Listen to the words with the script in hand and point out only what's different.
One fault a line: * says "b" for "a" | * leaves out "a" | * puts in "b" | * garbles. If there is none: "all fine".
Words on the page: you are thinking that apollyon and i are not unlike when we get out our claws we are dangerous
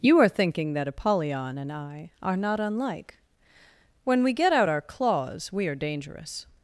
all fine